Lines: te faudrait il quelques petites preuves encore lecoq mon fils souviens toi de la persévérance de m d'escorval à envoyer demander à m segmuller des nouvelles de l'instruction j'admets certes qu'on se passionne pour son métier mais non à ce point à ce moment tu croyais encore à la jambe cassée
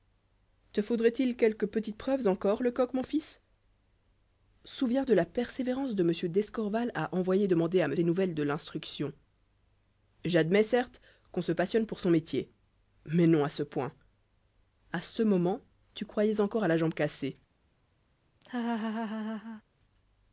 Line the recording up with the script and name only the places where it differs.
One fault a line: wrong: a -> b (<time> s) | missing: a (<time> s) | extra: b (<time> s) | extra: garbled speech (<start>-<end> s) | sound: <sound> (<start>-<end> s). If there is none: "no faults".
missing: toi (5.0 s)
missing: segmuller (8.0 s)
sound: laugh (18.4-19.6 s)